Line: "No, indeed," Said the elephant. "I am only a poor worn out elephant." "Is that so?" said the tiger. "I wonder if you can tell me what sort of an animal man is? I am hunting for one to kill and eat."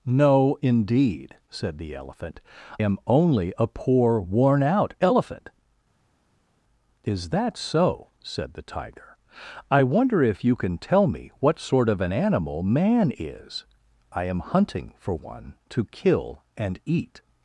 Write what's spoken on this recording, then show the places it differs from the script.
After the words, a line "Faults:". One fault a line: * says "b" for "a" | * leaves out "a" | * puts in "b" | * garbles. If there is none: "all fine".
"No, indeed," Said the elephant. "am only a poor worn out elephant." "Is that so?" said the tiger. "I wonder if you can tell me what sort of an animal man is? I am hunting for one to kill and eat."
Faults:
* leaves out "I"